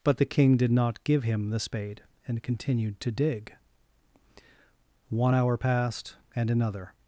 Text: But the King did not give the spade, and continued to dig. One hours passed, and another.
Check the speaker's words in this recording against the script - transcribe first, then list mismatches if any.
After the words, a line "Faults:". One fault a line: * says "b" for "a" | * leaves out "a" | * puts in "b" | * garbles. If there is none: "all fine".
But the King did not give him the spade, and continued to dig. One hour passed, and another.
Faults:
* puts in "him"
* says "hour" for "hours"